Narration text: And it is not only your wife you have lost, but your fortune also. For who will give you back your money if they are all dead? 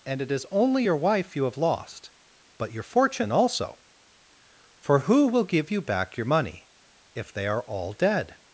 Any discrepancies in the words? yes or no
yes